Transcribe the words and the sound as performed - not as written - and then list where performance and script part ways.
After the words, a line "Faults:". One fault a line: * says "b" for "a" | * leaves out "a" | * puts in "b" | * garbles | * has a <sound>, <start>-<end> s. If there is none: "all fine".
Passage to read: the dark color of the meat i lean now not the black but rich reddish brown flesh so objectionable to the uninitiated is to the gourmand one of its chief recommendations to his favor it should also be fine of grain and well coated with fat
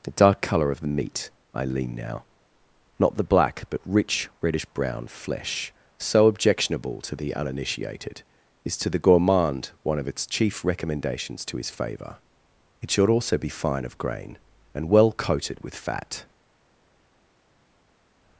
the dark color of the meat i lean now not the black but rich reddish brown flesh so objectionable to the uninitiated is to the gourmand one of its chief recommendations to his favor it should also be fine of grain and well coated with fat
Faults:
all fine